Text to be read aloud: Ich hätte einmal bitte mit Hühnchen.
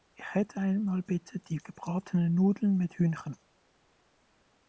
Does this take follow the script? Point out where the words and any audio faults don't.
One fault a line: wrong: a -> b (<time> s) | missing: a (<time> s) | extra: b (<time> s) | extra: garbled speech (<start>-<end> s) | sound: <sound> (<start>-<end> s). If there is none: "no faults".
extra: die gebratenen Nudeln (1.4 s)